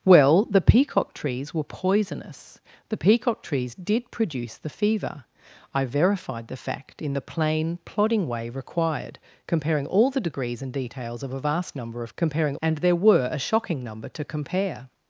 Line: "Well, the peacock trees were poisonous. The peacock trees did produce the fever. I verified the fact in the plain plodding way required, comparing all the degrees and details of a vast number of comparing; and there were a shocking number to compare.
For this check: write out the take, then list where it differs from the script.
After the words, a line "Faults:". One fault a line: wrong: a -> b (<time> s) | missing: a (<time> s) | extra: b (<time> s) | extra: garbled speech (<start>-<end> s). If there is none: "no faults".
"Well, the peacock trees were poisonous. The peacock trees did produce the fever. I verified the fact in the plain plodding way required, comparing all the degrees and details of a vast number of comparing; and there were a shocking number to compare.
Faults:
no faults